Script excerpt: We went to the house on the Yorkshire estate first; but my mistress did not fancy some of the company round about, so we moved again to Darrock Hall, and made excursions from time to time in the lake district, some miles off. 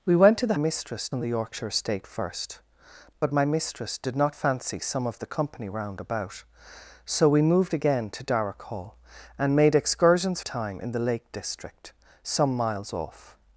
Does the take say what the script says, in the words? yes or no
no